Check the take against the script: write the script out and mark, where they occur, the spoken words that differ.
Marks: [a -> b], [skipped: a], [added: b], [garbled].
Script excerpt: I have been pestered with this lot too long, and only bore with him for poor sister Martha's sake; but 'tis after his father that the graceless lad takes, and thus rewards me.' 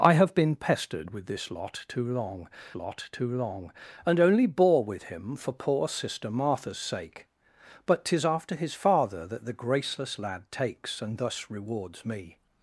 I have been pestered with this lot too long, [added: lot too long] and only bore with him for poor sister Martha's sake; but 'tis after his father that the graceless lad takes, and thus rewards me.'